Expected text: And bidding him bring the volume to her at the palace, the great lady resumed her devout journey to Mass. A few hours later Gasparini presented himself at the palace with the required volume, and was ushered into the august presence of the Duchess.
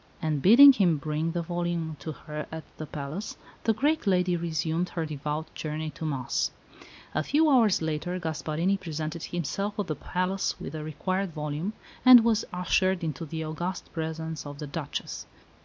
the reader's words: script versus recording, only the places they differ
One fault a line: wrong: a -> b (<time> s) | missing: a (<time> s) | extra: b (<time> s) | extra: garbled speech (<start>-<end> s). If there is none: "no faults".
no faults